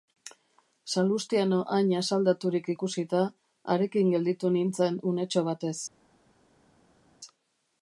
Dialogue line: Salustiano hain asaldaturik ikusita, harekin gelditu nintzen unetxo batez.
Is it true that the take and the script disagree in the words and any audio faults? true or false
false